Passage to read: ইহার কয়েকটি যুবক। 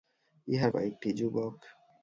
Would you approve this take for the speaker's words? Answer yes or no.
yes